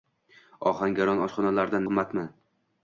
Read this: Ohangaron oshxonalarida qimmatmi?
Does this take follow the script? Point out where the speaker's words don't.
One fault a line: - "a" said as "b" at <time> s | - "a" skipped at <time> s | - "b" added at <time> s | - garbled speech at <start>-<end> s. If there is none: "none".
none